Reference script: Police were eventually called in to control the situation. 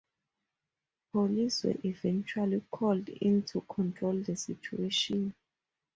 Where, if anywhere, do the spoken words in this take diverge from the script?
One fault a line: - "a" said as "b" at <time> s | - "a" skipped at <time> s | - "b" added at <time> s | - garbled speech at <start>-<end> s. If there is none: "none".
none